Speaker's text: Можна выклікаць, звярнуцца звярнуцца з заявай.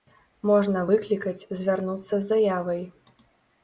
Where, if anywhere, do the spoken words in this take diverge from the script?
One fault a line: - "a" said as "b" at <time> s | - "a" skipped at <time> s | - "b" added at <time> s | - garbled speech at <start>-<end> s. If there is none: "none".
- "звярнуцца" skipped at 2.1 s